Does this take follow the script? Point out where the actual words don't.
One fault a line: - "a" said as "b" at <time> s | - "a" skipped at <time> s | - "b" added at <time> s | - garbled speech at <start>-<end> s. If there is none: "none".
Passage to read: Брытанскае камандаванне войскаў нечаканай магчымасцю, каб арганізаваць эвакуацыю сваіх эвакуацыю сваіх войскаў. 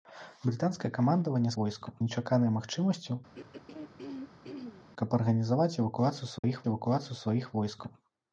none